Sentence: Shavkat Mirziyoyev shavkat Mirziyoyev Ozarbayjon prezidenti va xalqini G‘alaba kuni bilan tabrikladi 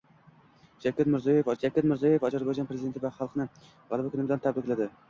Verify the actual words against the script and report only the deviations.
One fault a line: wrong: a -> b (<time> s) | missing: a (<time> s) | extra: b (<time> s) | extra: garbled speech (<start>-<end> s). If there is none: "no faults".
no faults